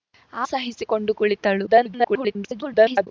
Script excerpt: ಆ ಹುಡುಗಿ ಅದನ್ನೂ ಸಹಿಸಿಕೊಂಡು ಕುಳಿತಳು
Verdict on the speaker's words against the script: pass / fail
fail